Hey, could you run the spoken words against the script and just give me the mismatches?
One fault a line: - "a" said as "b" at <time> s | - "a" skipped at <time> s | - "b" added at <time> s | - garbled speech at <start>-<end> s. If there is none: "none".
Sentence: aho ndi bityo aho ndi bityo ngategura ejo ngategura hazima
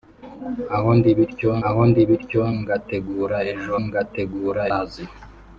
none